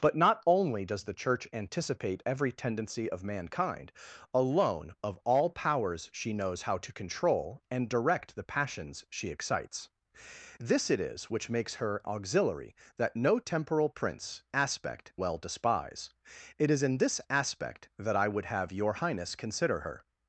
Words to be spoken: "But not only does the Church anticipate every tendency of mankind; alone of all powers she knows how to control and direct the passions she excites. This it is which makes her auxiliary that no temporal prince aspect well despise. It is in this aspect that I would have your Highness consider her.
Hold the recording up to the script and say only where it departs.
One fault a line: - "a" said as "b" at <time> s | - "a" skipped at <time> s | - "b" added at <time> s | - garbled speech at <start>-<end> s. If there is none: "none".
none